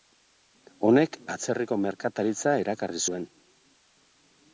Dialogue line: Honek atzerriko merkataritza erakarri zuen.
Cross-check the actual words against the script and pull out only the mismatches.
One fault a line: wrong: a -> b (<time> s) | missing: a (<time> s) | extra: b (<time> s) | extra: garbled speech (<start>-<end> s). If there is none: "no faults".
no faults